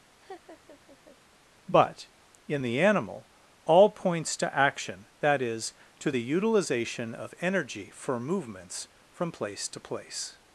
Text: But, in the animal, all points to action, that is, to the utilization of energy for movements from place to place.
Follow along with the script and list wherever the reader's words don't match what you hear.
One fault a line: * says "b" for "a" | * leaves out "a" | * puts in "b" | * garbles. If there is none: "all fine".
all fine